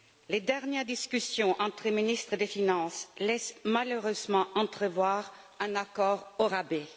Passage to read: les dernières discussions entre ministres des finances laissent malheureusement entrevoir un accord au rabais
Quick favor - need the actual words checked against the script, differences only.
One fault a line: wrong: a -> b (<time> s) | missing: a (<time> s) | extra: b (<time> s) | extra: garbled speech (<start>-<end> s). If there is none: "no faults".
no faults